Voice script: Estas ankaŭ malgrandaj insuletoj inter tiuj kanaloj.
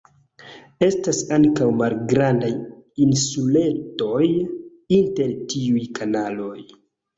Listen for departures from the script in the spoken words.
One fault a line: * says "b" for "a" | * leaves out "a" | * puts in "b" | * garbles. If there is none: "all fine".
all fine